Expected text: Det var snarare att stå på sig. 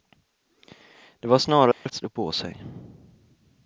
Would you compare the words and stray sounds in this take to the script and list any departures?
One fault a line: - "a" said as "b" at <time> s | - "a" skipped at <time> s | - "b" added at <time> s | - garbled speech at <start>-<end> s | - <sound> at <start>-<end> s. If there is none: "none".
- dropout at 1.7-1.9 s